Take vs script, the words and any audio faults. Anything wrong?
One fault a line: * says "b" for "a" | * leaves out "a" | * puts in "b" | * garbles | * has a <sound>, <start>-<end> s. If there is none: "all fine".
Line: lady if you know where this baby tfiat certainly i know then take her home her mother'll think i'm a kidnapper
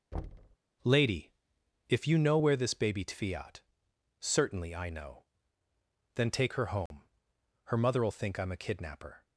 * has a thud, 0.1-0.6 s
* has a dropout, 6.9-6.9 s